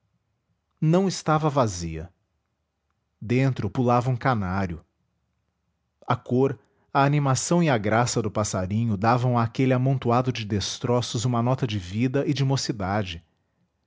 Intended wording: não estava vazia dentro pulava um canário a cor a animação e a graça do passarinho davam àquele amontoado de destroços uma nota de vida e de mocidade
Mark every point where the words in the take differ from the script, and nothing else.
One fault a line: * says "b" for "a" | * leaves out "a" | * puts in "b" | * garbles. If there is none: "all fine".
all fine